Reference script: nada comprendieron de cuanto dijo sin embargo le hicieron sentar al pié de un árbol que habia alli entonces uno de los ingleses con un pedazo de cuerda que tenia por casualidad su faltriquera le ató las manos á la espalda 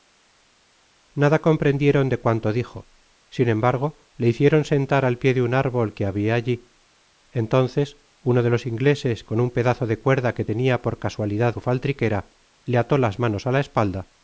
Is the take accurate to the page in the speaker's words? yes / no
yes